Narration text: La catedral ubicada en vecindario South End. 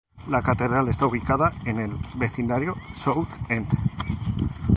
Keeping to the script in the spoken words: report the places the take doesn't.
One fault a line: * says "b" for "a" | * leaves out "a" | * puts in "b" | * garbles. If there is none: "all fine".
* puts in "está"
* puts in "el"